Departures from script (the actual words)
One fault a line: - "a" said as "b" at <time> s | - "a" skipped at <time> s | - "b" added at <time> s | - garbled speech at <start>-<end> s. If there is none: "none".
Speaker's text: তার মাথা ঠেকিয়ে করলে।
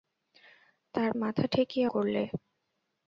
none